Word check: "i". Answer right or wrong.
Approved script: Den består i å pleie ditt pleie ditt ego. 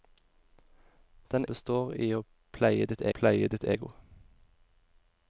right